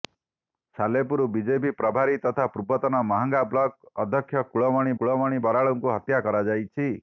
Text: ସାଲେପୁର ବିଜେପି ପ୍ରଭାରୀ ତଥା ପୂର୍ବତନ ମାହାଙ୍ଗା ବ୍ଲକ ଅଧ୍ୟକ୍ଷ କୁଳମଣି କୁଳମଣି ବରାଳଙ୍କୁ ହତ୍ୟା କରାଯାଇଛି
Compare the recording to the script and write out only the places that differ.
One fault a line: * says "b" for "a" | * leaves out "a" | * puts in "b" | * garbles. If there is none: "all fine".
all fine